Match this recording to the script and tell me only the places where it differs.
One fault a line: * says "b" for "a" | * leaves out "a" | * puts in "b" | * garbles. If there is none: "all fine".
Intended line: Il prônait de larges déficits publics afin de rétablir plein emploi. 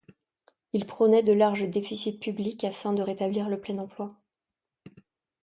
* puts in "le"